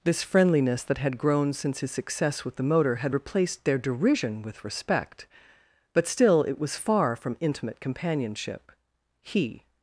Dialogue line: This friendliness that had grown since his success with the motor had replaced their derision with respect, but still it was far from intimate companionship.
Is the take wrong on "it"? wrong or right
right